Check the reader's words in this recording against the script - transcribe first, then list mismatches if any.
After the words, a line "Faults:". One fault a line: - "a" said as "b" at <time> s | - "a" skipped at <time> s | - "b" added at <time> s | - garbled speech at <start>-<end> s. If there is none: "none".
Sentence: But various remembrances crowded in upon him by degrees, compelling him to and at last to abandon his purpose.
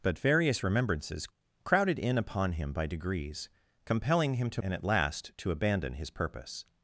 But various remembrances crowded in upon him by degrees, compelling him to and at last to abandon his purpose.
Faults:
none